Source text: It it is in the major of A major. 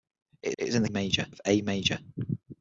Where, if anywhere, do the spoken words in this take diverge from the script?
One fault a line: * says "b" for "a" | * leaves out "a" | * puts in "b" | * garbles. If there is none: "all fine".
all fine